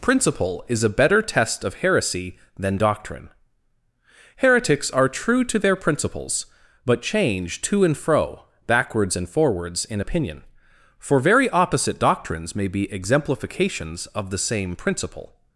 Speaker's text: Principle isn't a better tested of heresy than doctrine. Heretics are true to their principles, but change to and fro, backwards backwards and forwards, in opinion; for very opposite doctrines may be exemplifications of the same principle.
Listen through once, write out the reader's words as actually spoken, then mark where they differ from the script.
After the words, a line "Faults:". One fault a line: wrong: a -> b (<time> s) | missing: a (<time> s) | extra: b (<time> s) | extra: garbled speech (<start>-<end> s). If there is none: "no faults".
Principle is a better test of heresy than doctrine. Heretics are true to their principles, but change to and fro, backwards and forwards, in opinion; for very opposite doctrines may be exemplifications of the same principle.
Faults:
wrong: isn't -> is (0.7 s)
wrong: tested -> test (1.2 s)
missing: backwards (9.2 s)